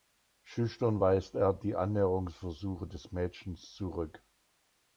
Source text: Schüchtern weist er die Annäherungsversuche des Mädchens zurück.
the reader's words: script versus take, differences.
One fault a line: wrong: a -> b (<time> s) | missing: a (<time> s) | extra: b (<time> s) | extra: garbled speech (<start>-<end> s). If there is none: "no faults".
no faults